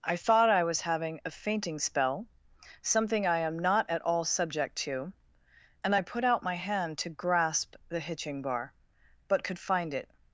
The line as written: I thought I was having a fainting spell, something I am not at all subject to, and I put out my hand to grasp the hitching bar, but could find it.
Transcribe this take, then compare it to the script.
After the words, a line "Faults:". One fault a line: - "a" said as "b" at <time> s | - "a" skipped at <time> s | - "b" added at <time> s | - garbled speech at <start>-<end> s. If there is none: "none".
I thought I was having a fainting spell, something I am not at all subject to, and I put out my hand to grasp the hitching bar, but could find it.
Faults:
none